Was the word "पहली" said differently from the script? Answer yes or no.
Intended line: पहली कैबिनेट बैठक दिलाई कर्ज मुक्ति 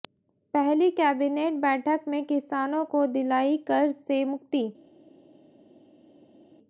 no